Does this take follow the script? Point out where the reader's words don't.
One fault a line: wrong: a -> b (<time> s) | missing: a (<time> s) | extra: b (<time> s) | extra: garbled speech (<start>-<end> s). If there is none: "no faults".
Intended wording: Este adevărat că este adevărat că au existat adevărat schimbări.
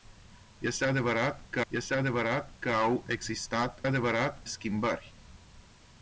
no faults